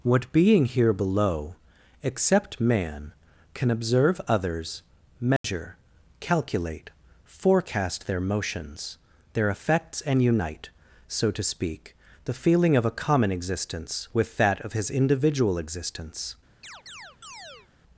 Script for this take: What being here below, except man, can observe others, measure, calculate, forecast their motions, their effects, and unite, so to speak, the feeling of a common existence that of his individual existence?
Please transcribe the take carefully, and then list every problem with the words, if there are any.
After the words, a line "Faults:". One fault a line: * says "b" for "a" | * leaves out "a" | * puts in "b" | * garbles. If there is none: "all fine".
What being here below, except man, can observe others, measure, calculate, forecast their motions, their effects, and unite, so to speak, the feeling of a common existence with that of his individual existence?
Faults:
* puts in "with"